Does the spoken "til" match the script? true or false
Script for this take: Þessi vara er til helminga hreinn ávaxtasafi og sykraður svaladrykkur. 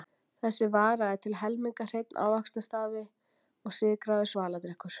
true